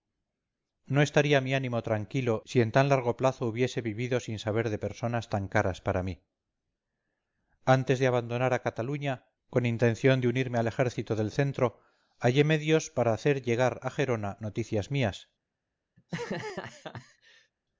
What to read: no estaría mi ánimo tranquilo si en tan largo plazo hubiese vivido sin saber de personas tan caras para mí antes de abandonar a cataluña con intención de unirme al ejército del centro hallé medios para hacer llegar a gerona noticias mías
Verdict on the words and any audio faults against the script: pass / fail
fail